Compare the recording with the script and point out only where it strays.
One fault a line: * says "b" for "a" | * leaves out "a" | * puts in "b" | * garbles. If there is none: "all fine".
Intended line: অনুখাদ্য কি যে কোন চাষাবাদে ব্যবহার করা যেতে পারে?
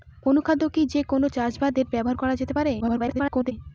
* garbles